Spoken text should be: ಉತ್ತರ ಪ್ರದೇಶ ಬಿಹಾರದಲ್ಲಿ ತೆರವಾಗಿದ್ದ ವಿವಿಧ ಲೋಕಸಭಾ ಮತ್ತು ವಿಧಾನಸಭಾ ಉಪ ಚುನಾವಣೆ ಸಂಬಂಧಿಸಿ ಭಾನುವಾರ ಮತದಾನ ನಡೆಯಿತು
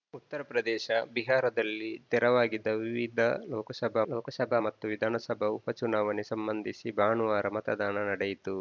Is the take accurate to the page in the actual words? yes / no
no